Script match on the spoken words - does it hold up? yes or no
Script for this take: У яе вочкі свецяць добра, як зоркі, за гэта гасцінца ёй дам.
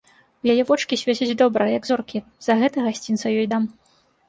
yes